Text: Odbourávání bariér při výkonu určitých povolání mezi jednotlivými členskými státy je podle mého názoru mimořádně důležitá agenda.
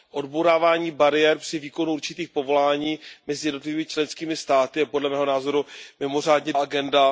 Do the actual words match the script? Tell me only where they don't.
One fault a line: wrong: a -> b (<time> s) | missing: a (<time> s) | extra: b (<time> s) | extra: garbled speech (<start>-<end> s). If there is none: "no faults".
missing: důležitá (6.5 s)